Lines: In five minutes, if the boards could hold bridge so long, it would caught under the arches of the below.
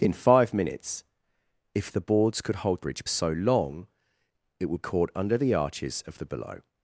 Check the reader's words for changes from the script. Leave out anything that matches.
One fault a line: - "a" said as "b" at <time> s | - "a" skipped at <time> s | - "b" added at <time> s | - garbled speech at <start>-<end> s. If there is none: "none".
none